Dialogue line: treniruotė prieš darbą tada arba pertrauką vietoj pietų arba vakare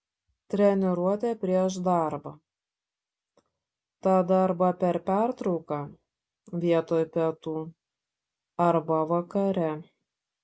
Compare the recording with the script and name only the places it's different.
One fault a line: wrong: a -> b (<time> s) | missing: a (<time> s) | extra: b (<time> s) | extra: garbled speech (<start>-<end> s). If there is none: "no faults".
extra: per (4.8 s)